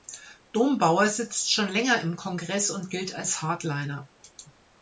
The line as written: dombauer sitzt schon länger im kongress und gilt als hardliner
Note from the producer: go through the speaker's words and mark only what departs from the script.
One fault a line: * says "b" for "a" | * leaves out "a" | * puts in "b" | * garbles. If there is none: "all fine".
all fine